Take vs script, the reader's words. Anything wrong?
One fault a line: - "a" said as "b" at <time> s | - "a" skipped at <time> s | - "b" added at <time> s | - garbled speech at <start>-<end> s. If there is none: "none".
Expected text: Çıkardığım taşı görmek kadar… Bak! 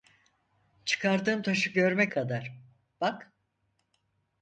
none